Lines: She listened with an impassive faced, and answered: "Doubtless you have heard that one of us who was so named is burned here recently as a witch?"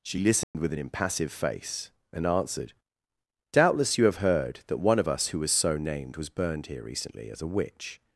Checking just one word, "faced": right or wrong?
wrong